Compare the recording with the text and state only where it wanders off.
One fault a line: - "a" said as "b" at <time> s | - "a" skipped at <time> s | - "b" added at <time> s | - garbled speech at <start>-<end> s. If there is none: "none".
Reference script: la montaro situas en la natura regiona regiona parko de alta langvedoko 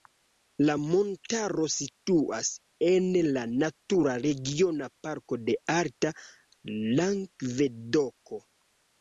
- "regiona" skipped at 4.9 s